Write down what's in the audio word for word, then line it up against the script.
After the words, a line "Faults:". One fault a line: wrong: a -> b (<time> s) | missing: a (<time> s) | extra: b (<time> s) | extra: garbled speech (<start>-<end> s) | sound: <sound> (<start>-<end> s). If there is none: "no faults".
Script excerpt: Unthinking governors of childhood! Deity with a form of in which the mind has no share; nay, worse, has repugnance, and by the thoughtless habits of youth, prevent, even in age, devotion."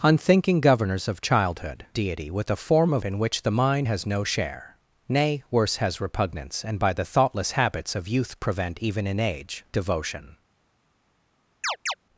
Unthinking governors of childhood! Deity with a form of in which the mind has no share; nay, worse, has repugnance, and by the thoughtless habits of youth, prevent, even in age, devotion."
Faults:
sound: chirp (11.6-11.9 s)